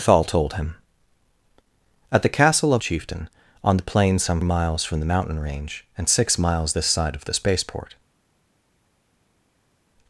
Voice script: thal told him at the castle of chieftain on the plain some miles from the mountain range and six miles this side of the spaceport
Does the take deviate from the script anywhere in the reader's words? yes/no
no